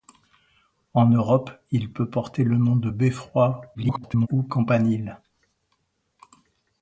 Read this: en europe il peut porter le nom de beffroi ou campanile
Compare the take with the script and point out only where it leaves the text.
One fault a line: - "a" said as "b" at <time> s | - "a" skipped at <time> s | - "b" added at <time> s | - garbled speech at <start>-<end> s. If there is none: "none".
- garbled speech at 3.7-4.3 s